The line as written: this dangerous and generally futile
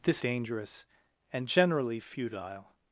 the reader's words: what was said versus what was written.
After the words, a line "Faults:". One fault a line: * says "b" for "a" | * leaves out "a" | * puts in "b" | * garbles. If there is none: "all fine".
this dangerous and generally futile
Faults:
all fine